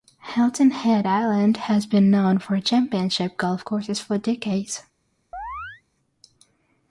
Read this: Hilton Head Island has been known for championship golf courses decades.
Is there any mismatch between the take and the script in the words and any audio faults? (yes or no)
yes